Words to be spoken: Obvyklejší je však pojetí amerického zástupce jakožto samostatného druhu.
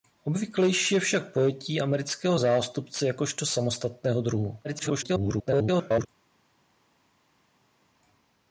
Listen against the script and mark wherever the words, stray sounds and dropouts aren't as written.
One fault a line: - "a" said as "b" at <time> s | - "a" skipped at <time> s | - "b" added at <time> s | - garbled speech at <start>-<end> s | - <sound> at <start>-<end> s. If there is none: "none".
- garbled speech at 4.6-6.1 s